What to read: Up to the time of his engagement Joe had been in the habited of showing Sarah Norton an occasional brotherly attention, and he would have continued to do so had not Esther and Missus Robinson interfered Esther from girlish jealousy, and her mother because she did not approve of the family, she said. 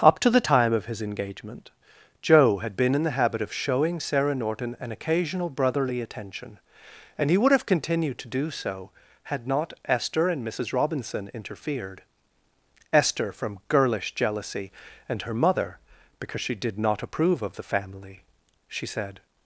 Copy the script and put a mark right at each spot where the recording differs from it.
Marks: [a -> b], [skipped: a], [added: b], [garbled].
Up to the time of his engagement Joe had been in the [habited -> habit] of showing Sarah Norton an occasional brotherly attention, and he would have continued to do so had not Esther and Missus Robinson interfered Esther from girlish jealousy, and her mother because she did not approve of the family, she said.